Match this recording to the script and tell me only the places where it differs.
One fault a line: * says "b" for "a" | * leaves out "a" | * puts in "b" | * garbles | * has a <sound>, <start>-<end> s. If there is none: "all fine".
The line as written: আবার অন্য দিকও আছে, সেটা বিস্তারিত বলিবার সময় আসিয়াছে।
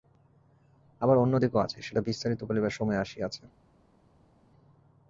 all fine